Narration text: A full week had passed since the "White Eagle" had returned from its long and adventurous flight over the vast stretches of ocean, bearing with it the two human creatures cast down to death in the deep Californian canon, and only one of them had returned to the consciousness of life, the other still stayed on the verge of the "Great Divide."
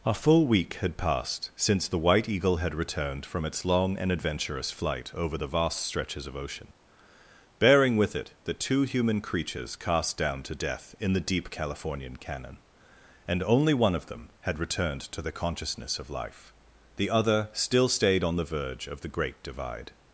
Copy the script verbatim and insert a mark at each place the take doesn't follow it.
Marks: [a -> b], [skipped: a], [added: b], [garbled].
A full week had passed since the "White Eagle" had returned from its long and adventurous flight over the vast stretches of ocean, bearing with it the two human creatures cast down to death in the deep Californian canon, and only one of them had returned to the consciousness of life, the other still stayed on the verge of the "Great Divide."